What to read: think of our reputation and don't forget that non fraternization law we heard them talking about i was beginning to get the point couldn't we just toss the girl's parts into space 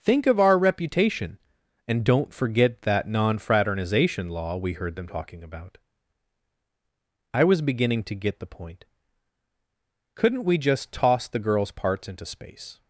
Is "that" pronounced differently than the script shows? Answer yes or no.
no